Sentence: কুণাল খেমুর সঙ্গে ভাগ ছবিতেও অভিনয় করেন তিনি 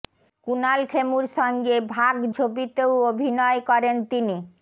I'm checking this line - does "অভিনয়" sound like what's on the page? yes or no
yes